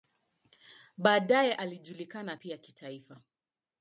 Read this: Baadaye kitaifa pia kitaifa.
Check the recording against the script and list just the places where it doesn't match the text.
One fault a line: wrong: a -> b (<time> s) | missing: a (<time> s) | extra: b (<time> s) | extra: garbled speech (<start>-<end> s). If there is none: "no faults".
wrong: kitaifa -> alijulikana (1.5 s)